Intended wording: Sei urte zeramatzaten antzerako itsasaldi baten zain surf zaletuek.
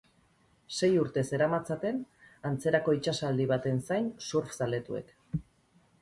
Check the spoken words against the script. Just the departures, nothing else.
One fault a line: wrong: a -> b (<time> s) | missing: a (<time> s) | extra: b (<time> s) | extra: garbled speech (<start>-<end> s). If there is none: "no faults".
no faults